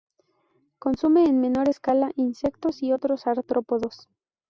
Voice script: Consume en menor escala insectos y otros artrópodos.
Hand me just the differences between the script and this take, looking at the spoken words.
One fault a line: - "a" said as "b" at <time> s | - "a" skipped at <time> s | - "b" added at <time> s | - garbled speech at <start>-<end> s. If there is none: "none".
none